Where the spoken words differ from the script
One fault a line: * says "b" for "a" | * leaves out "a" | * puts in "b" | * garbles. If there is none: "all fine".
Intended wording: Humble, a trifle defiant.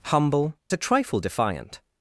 all fine